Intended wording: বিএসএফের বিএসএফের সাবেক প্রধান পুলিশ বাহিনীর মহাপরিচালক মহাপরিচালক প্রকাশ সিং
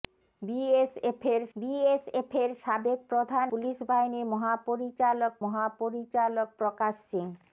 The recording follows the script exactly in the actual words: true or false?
true